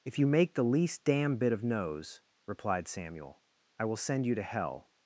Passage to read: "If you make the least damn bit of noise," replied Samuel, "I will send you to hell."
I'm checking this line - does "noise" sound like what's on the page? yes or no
no